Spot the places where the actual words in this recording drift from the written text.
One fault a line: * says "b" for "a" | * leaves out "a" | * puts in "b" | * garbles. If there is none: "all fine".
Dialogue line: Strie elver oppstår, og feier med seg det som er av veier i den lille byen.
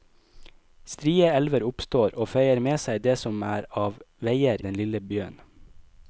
* leaves out "i"